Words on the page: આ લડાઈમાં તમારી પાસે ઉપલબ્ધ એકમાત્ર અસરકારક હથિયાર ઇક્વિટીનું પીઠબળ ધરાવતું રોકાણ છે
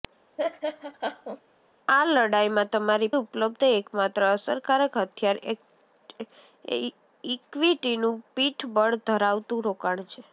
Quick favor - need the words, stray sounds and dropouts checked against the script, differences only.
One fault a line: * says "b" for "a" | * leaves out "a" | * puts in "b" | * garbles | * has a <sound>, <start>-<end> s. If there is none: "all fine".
* has a laugh, 0.4-1.4 s
* leaves out "પાસે"